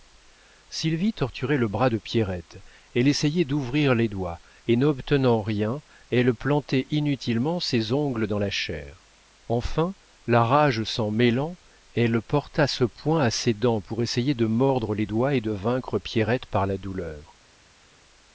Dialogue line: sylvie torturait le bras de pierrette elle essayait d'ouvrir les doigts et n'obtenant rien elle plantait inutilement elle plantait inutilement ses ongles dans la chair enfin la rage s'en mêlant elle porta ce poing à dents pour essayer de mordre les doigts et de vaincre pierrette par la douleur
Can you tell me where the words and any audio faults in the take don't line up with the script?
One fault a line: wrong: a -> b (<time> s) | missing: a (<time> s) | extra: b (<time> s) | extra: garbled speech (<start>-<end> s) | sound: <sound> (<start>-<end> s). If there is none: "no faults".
missing: elle plantait inutilement (7.6 s)
extra: ses (13.3 s)